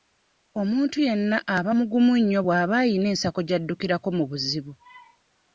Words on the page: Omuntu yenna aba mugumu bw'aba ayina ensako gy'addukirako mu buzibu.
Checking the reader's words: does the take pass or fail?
fail